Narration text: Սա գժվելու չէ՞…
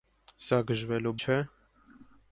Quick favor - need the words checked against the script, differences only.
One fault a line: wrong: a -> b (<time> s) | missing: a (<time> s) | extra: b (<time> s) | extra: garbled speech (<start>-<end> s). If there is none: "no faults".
no faults